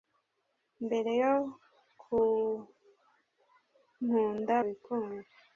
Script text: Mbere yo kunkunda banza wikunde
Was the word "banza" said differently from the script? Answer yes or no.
yes